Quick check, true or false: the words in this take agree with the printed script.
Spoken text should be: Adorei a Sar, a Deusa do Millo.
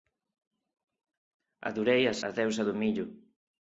false